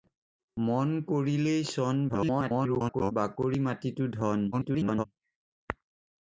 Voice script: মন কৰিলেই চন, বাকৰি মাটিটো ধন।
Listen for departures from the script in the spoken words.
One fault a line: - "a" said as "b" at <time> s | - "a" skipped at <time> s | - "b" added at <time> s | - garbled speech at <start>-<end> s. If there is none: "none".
- garbled speech at 2.1-3.1 s
- garbled speech at 4.5-5.0 s